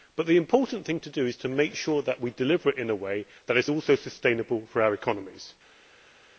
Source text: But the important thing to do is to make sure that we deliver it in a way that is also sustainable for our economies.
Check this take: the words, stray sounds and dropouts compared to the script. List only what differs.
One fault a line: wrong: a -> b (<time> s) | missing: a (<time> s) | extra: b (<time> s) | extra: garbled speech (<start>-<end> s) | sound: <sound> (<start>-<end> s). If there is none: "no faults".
no faults